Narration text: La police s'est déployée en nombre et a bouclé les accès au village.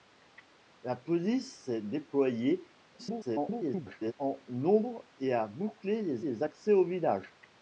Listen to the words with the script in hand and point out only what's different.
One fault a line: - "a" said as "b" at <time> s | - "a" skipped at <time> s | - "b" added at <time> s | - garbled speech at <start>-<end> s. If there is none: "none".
- garbled speech at 3.0-4.1 s
- "les" added at 6.2 s